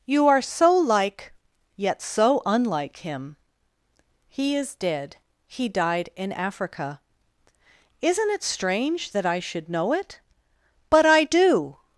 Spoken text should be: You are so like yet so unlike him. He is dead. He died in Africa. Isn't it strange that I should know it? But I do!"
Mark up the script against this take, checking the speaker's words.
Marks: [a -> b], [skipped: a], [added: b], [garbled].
You are so like yet so unlike him. He is dead. He died in Africa. Isn't it strange that I should know it? But I do!"